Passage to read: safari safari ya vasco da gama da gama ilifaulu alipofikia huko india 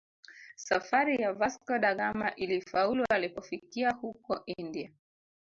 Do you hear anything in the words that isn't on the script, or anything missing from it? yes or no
yes